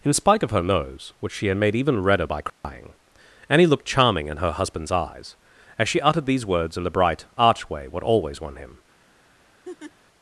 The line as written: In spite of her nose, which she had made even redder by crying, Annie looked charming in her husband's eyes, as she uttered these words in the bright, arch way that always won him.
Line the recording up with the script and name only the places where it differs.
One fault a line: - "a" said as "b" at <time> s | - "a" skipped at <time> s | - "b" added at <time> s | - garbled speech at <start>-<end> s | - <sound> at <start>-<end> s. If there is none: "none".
- dropout at 2.5-2.6 s
- "that" said as "what" at 7.9 s
- laugh at 9.6-9.9 s